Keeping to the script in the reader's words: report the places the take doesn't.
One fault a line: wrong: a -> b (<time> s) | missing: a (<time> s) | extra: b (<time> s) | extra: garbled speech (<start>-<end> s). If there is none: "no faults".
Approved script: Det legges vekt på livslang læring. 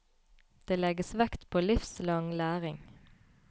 no faults